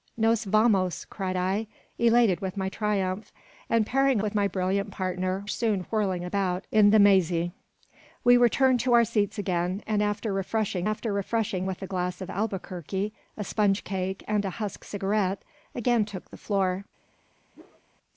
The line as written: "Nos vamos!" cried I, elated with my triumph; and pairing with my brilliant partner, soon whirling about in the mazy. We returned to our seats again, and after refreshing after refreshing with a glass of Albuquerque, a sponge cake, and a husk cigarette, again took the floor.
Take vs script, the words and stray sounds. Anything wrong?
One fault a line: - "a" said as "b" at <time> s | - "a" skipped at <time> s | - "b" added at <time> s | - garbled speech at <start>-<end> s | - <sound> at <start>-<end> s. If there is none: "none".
- whoosh at 17.5-17.8 s